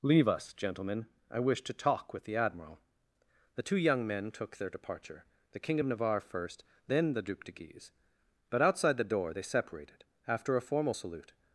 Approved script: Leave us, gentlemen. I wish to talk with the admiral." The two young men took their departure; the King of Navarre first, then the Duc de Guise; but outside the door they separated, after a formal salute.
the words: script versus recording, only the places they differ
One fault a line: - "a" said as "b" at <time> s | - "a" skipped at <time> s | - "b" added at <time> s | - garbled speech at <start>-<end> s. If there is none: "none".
none